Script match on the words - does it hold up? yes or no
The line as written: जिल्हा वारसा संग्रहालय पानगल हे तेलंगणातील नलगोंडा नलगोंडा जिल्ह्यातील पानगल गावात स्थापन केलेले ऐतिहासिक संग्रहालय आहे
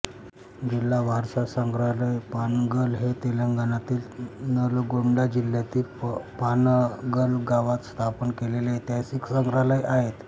no